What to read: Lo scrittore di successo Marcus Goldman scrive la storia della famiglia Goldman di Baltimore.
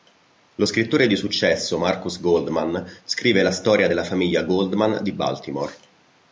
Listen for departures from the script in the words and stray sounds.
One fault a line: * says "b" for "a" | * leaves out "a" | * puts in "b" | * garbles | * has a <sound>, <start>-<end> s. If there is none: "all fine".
all fine